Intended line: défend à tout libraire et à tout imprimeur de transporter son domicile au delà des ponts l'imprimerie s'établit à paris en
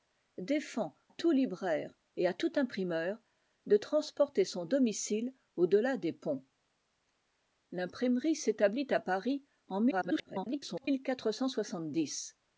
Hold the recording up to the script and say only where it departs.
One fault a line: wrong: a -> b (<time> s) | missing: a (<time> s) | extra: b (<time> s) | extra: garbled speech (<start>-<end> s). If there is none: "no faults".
missing: à (0.9 s)
extra: garbled speech (9.9-10.9 s)